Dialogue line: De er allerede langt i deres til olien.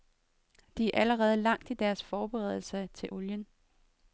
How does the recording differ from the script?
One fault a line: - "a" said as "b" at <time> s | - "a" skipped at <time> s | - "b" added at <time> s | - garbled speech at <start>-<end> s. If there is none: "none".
- "forberedelser" added at 2.0 s